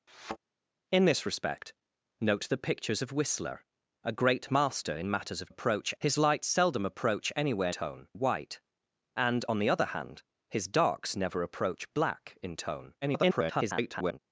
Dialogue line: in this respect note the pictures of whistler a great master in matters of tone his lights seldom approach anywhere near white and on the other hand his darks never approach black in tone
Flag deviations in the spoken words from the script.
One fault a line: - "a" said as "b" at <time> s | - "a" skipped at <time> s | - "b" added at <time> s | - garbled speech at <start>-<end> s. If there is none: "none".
- "tone" said as "approach" at 5.5 s
- "near" said as "tone" at 7.7 s
- garbled speech at 13.0-14.2 s